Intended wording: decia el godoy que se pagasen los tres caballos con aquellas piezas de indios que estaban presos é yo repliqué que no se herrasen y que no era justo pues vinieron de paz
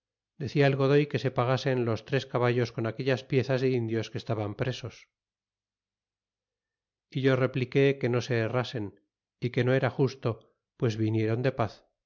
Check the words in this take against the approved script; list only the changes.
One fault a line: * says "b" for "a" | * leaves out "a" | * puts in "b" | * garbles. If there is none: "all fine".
all fine